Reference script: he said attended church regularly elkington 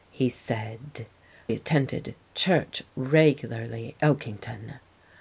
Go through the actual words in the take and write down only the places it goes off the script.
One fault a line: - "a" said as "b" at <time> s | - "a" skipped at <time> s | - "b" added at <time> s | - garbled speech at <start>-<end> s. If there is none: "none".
none